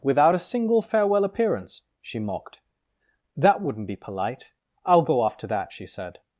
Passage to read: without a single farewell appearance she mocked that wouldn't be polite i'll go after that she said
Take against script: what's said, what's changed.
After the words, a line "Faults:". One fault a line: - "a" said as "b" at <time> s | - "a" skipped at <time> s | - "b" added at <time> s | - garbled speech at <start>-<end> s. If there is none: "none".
without a single farewell appearance she mocked that wouldn't be polite i'll go after that she said
Faults:
none